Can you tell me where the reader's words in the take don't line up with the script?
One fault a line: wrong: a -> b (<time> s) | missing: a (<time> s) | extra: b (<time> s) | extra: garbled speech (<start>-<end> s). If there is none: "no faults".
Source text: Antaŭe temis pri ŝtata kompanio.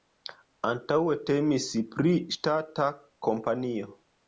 no faults